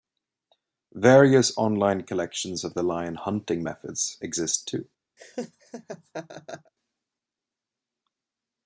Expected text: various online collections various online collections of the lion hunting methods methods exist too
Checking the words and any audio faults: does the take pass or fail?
fail